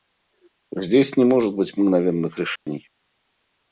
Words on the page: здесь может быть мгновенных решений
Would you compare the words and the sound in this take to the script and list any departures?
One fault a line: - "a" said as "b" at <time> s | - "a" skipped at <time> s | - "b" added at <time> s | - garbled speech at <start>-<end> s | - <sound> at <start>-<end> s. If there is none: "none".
- "не" added at 1.1 s
- dropout at 2.6-2.7 s